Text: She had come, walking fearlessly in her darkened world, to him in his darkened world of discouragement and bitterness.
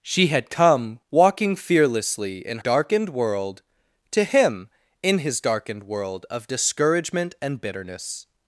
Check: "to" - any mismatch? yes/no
no